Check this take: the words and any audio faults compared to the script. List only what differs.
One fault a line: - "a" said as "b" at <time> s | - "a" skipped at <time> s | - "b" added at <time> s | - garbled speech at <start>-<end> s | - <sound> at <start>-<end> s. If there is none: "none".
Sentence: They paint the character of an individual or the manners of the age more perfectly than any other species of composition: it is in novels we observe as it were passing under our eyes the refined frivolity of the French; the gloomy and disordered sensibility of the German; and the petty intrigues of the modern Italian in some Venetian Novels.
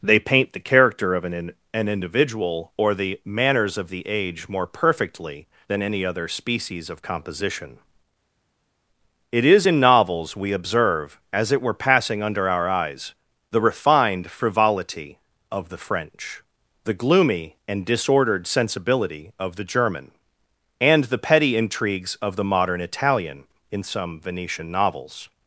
- "an" added at 1.7 s